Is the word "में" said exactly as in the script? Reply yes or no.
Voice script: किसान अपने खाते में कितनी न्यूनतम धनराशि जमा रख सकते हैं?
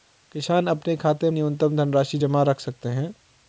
no